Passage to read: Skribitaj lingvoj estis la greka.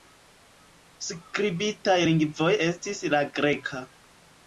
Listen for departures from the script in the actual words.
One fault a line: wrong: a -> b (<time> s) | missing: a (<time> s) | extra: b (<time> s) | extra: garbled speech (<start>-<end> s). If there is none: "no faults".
no faults